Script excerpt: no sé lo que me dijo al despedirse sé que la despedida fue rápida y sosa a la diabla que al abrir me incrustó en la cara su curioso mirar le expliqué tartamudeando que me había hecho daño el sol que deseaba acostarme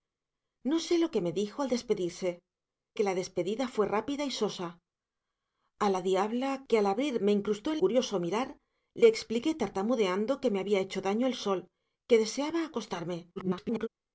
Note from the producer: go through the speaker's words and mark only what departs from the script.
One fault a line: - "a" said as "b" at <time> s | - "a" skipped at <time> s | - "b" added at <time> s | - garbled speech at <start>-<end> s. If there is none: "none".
- "sé" skipped at 2.3 s
- "la cara su" skipped at 7.8 s
- garbled speech at 13.4-13.9 s